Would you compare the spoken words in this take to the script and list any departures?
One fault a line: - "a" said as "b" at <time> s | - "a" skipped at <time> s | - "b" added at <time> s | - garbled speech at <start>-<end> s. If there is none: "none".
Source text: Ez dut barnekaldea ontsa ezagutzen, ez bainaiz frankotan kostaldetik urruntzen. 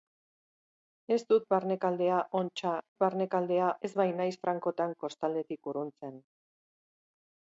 - "ezagutzen" said as "barnekaldea" at 3.0 s